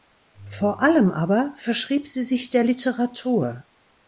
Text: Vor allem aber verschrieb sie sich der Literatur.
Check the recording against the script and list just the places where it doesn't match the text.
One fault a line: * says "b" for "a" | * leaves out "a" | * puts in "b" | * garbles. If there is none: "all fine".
all fine